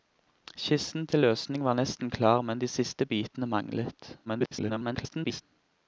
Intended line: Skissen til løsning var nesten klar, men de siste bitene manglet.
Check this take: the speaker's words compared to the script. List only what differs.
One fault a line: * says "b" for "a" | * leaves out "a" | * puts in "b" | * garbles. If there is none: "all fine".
* garbles